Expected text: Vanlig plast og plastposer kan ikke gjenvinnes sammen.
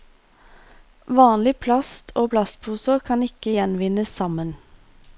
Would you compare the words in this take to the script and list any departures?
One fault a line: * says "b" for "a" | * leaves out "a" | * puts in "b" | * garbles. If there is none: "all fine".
all fine